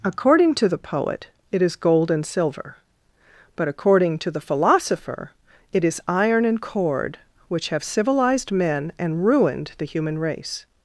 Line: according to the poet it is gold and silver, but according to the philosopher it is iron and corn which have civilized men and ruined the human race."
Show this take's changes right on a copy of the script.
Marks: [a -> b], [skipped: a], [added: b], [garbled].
according to the poet it is gold and silver, but according to the philosopher it is iron and [corn -> cord] which have civilized men and ruined the human race."